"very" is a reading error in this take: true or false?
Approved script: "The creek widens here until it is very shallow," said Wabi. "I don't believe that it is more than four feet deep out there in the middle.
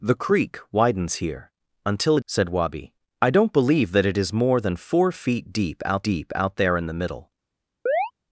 true